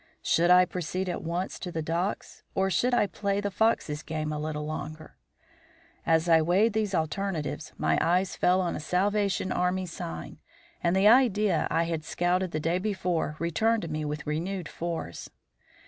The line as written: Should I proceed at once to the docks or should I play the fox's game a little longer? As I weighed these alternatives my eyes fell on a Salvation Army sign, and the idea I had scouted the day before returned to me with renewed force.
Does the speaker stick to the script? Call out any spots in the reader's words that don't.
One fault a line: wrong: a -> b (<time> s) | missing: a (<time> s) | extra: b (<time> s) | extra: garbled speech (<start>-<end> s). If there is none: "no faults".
no faults